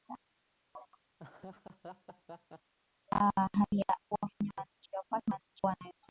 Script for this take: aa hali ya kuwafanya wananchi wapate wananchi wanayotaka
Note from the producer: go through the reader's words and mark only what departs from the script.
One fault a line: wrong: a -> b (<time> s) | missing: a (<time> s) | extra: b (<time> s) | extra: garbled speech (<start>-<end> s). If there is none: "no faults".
no faults